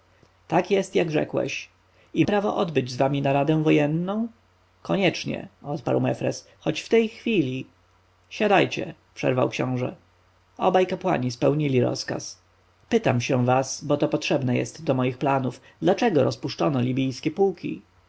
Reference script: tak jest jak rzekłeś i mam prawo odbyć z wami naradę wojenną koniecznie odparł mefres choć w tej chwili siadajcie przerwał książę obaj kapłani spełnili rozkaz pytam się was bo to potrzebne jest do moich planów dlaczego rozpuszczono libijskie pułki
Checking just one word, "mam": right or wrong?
wrong